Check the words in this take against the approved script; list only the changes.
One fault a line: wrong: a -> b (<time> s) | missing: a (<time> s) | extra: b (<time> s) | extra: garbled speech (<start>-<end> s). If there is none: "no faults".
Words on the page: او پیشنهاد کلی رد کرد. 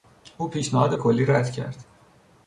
no faults